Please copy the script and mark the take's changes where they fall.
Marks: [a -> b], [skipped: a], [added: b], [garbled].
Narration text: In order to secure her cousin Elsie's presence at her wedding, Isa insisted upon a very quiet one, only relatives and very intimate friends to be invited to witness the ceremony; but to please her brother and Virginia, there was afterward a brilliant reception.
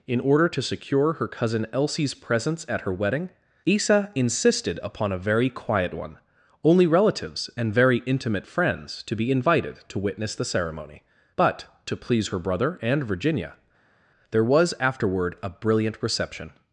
In order to secure her cousin Elsie's presence at her wedding, Isa insisted upon a very quiet one, only relatives and very intimate friends to be invited to witness the ceremony; but to please her brother and Virginia, there was afterward a brilliant reception.